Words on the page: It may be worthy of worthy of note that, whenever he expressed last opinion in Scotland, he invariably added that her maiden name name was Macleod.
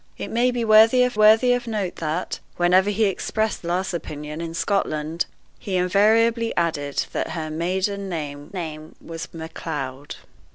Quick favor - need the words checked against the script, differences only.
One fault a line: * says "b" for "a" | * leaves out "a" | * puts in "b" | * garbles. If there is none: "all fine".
all fine